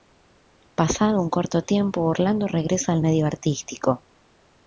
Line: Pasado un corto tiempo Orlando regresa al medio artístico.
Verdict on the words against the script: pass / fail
pass